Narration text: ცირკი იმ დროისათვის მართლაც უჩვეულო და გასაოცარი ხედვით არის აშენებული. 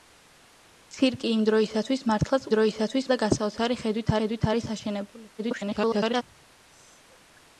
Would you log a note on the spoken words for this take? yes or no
yes